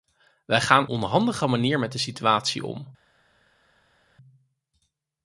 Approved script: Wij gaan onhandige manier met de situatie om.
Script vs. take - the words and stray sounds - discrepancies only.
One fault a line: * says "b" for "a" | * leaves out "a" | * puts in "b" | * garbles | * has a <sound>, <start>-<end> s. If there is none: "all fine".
all fine